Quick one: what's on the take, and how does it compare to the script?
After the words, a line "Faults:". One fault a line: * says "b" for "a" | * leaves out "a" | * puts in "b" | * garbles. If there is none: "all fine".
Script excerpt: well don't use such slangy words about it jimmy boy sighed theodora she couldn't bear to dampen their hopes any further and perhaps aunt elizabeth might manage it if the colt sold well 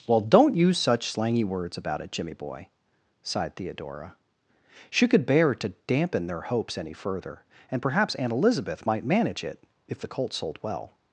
well don't use such slangy words about it jimmy boy sighed theodora she could bear to dampen their hopes any further and perhaps aunt elizabeth might manage it if the colt sold well
Faults:
* says "could" for "couldn't"